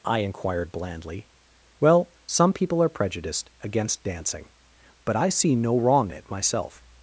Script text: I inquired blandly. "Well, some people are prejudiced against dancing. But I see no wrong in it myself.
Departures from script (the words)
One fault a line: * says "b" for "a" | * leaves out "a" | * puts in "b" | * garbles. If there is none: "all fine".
* leaves out "in"